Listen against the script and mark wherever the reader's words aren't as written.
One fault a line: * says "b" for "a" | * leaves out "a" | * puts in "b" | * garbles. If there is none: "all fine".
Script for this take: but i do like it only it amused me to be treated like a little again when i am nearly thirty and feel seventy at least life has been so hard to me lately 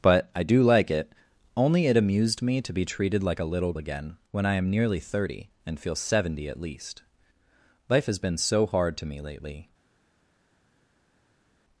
all fine